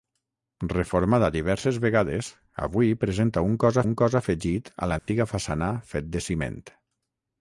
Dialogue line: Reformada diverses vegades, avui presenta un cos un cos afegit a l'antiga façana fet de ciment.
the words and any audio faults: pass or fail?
fail